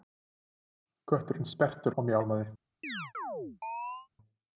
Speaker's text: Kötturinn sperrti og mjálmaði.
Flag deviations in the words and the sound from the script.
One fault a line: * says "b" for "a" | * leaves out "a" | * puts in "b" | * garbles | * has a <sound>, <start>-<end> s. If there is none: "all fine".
* has a chirp, 2.8-4.1 s